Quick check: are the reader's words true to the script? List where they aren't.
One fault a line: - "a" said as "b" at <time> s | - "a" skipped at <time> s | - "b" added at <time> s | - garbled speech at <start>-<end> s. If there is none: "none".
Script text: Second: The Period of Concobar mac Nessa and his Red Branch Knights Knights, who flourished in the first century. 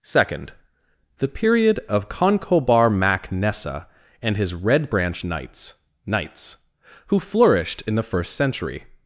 none